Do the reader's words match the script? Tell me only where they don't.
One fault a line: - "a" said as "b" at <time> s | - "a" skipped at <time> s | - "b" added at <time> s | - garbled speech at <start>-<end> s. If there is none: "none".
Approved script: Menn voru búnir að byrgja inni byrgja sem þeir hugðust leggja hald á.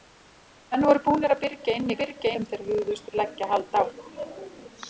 none